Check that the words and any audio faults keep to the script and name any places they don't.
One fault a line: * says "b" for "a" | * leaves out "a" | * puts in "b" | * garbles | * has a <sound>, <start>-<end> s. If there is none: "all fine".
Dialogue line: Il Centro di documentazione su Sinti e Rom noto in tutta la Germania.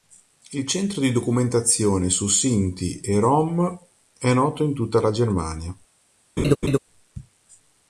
* puts in "è"
* has a laugh, 6.4-6.8 s